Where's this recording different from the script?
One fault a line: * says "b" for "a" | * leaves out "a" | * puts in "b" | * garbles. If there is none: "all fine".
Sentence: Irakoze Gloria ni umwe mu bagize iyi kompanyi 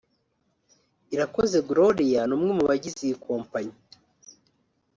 all fine